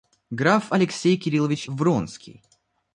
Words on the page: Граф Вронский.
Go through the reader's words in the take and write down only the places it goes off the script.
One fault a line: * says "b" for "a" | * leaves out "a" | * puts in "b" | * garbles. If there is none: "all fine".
* puts in "Алексей Кириллович"